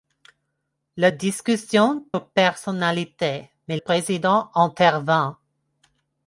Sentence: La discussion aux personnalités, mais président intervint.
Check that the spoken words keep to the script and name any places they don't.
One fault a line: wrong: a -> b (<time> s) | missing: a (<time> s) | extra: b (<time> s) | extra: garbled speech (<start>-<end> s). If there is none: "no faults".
no faults